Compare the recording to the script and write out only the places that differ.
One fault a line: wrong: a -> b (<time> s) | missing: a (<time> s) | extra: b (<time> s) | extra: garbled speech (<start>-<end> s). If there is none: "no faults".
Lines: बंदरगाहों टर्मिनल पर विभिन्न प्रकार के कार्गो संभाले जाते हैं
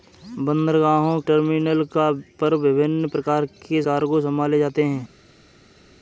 no faults